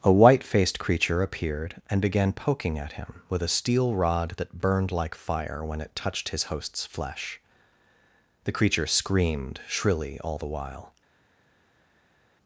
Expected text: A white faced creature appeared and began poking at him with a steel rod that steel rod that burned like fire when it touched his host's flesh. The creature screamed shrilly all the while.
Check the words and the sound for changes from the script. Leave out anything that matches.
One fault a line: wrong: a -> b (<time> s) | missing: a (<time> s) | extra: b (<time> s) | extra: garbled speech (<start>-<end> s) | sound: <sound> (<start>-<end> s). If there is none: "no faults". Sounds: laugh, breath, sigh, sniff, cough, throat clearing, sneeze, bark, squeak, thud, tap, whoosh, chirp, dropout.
missing: steel rod that (4.6 s)